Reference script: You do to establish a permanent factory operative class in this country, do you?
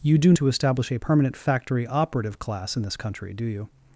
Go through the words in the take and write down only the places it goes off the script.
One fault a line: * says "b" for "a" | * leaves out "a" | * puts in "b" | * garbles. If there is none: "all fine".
all fine